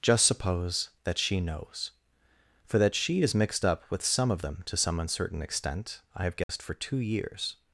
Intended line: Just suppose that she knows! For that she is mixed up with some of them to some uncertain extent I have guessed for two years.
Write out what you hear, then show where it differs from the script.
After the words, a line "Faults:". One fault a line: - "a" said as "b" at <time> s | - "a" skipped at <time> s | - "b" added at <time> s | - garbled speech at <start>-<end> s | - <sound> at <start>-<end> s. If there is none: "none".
Just suppose that she knows! For that she is mixed up with some of them to some uncertain extent I have guessed for two years.
Faults:
- dropout at 6.4-6.5 s